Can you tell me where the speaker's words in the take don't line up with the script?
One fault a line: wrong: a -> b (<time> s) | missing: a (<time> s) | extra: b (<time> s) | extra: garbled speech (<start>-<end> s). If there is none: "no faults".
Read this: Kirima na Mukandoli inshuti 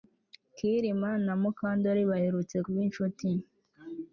extra: baherutse kuba (2.1 s)